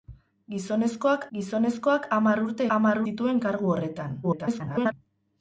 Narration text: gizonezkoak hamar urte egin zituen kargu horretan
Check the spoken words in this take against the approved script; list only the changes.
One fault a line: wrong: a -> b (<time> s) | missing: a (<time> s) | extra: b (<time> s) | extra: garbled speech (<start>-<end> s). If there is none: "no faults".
extra: gizonezkoak (1.4 s)
wrong: egin -> hamar (2.8 s)
extra: garbled speech (4.2-4.9 s)